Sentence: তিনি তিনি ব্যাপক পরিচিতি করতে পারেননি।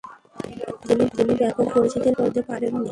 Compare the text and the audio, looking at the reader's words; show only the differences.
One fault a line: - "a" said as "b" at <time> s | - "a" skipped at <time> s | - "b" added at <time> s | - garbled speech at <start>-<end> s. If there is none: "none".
none